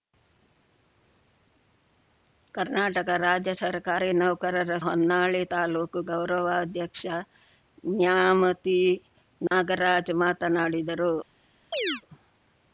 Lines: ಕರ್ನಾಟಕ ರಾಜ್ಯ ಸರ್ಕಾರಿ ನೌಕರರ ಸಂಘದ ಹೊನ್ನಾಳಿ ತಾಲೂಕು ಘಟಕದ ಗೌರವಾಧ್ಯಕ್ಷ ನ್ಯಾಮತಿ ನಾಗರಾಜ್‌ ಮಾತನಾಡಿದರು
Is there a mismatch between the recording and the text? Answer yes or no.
yes